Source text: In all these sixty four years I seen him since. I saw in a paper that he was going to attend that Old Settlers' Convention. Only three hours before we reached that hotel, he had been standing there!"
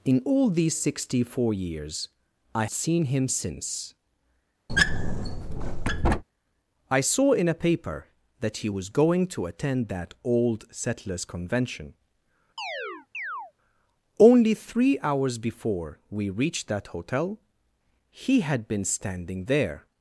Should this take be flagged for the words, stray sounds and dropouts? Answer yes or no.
yes